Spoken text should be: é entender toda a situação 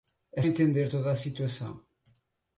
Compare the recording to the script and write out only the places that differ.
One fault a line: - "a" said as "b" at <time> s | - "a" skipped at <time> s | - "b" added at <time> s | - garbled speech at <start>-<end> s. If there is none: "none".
none